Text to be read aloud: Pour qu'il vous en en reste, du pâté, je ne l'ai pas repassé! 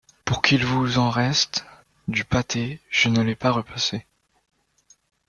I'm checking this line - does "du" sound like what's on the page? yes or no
yes